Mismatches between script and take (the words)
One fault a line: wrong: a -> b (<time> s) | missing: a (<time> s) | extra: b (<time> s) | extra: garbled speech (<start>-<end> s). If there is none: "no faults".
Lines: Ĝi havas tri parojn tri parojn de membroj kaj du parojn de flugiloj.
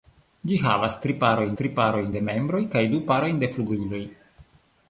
no faults